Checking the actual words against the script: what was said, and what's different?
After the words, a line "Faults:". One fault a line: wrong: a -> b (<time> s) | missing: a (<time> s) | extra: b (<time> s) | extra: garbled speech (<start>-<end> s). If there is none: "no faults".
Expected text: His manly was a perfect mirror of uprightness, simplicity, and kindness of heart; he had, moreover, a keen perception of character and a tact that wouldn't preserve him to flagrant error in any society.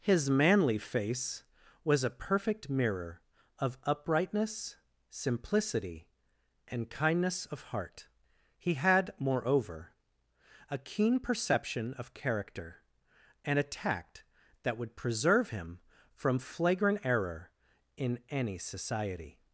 His manly face was a perfect mirror of uprightness, simplicity, and kindness of heart; he had, moreover, a keen perception of character and a tact that would preserve him from flagrant error in any society.
Faults:
extra: face (0.8 s)
wrong: wouldn't -> would (14.8 s)
wrong: to -> from (16.1 s)